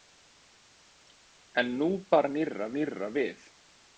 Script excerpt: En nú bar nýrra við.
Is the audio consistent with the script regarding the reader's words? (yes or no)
no